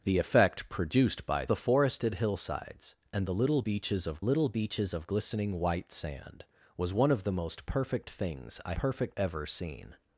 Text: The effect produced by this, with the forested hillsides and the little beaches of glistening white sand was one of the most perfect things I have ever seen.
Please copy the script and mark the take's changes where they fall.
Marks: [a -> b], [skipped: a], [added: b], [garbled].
The effect produced by [skipped: this, with] the forested hillsides and the little beaches of [added: little beaches of] glistening white sand was one of the most perfect things I [have -> perfect] ever seen.